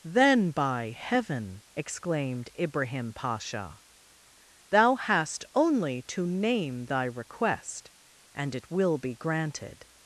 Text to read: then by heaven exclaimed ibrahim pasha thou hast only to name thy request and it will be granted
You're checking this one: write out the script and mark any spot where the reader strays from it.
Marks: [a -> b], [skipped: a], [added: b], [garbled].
then by heaven exclaimed ibrahim pasha thou hast only to name thy request and it will be granted